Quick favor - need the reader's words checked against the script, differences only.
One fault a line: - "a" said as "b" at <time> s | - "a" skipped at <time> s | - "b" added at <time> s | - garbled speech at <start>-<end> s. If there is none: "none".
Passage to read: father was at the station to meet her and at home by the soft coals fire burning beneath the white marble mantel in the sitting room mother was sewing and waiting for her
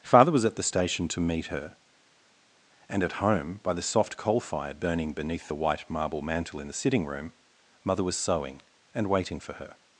- "coals" said as "coal" at 4.2 s